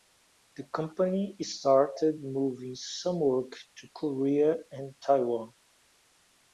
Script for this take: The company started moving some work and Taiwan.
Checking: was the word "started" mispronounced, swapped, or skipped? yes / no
no